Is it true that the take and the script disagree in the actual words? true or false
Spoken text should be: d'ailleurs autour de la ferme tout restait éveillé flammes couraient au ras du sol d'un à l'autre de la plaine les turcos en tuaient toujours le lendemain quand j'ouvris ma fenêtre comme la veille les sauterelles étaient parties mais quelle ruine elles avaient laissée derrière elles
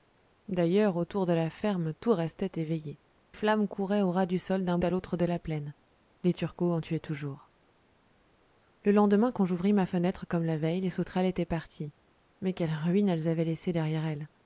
false